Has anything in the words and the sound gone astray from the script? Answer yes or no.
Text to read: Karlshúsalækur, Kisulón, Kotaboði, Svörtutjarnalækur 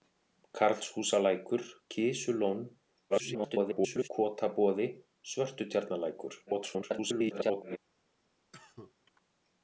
yes